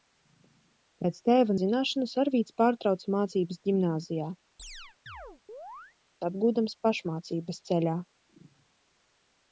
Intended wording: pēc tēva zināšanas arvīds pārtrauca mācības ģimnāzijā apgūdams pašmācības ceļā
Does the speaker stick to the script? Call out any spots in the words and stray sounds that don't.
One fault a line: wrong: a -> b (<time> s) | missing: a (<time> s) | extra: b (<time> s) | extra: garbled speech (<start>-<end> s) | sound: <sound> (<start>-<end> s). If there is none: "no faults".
sound: chirp (4.6-6.0 s)